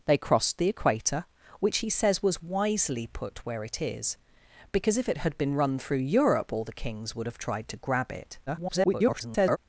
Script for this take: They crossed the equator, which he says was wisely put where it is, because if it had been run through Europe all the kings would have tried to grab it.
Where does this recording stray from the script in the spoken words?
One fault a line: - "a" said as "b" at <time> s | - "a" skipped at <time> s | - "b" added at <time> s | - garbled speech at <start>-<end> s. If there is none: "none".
- garbled speech at 8.5-9.6 s